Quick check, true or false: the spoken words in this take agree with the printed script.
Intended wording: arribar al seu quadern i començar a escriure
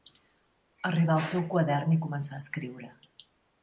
true